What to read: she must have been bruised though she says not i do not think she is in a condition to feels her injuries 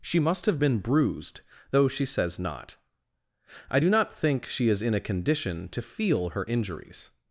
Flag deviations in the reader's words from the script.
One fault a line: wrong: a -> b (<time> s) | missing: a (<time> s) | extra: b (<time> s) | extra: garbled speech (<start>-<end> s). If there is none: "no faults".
wrong: feels -> feel (5.8 s)